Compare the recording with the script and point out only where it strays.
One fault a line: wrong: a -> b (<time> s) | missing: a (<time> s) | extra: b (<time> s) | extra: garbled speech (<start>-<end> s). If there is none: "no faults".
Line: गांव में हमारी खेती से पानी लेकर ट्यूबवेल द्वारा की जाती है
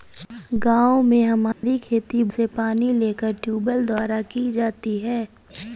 no faults